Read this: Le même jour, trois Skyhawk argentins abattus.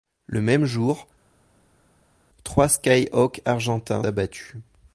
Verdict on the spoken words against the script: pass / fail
pass